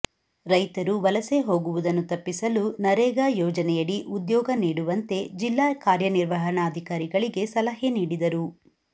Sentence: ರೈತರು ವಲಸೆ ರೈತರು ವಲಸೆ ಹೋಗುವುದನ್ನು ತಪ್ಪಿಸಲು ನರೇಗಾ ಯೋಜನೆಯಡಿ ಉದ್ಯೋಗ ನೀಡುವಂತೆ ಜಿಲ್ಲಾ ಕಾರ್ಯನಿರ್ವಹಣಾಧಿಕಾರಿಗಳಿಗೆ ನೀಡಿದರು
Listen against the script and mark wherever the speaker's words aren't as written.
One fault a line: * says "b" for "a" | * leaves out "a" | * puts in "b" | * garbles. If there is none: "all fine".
* leaves out "ರೈತರು ವಲಸೆ"
* puts in "ಸಲಹೆ"